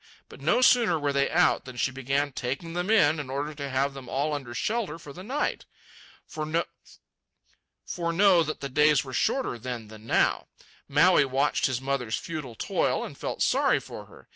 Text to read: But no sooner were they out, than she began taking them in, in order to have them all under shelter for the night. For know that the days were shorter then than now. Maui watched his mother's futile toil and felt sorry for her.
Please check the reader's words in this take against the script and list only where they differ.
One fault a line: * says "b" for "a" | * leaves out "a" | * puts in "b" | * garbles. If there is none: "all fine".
all fine